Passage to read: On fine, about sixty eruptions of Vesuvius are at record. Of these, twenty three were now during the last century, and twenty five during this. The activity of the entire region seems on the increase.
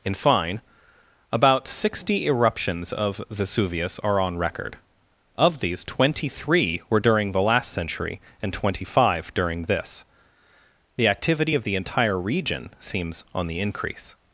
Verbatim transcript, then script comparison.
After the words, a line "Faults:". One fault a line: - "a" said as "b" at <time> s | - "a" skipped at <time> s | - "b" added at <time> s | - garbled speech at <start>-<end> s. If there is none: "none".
In fine, about sixty eruptions of Vesuvius are on record. Of these, twenty three were during the last century, and twenty five during this. The activity of the entire region seems on the increase.
Faults:
- "On" said as "In" at 0.0 s
- "at" said as "on" at 4.2 s
- "now" skipped at 7.0 s